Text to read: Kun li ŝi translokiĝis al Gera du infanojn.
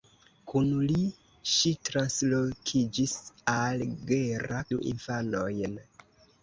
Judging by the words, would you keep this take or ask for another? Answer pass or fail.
pass